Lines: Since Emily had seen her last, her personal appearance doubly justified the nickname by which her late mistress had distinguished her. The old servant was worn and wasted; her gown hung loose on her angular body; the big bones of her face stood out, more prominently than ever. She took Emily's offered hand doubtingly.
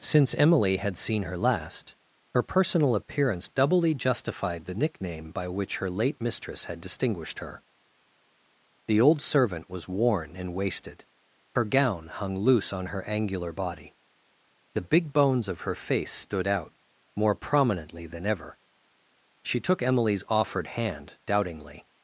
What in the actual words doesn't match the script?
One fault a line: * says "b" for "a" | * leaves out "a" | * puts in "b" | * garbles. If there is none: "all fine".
all fine